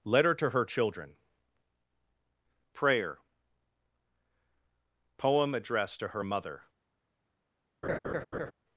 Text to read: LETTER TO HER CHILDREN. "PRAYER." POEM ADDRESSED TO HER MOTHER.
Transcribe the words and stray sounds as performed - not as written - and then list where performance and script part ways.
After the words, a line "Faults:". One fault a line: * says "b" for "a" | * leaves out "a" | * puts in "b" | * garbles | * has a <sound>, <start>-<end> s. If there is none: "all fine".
LETTER TO HER CHILDREN. "PRAYER." POEM ADDRESSED TO HER MOTHER.
Faults:
* has a laugh, 7.8-8.5 s